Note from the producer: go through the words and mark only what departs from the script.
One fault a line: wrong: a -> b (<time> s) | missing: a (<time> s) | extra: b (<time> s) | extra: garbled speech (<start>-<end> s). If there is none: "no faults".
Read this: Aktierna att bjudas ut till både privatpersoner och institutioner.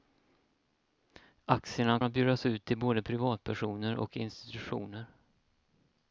no faults